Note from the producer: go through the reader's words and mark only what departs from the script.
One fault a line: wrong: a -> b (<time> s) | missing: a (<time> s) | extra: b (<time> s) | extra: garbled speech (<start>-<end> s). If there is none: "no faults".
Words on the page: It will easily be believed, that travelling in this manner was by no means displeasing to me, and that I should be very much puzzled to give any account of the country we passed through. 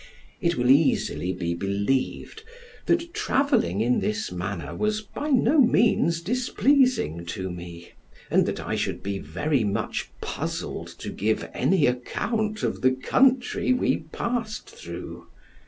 no faults